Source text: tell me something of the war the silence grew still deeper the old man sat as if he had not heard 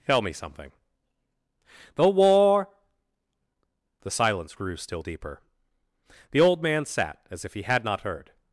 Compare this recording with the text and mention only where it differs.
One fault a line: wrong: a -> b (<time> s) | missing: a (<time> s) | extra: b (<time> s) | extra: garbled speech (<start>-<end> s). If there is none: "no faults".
missing: of (0.7 s)